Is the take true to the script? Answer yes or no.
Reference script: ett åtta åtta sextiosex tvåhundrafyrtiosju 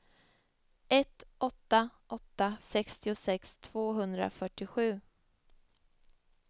yes